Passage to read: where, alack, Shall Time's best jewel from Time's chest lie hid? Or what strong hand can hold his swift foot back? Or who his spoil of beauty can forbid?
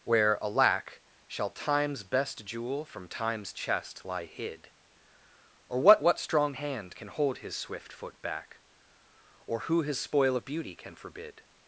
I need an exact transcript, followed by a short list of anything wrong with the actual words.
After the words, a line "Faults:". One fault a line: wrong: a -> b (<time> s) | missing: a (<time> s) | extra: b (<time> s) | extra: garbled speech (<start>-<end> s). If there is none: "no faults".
where, alack, Shall Time's best jewel from Time's chest lie hid? Or what what strong hand can hold his swift foot back? Or who his spoil of beauty can forbid?
Faults:
extra: what (6.0 s)